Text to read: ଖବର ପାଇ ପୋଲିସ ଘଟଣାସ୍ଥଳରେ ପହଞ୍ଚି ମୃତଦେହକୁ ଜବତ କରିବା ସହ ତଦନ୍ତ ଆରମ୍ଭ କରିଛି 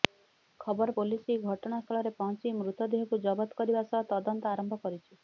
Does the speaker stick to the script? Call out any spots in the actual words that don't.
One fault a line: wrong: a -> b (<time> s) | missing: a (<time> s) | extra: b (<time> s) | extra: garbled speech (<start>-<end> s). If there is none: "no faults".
missing: ପାଇ (0.9 s)